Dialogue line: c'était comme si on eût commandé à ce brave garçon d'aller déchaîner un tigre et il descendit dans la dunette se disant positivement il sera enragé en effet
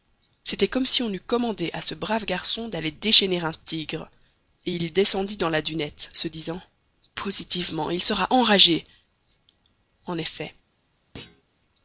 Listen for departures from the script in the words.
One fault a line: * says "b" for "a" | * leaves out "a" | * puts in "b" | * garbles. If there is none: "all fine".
all fine